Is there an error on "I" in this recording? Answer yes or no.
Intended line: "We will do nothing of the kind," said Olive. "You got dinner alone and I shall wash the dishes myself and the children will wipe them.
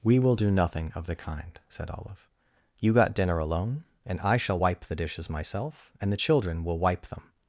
no